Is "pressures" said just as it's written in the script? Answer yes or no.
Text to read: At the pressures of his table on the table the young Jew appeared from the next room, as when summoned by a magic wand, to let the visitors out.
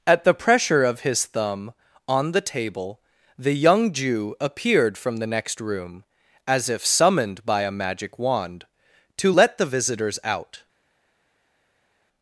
no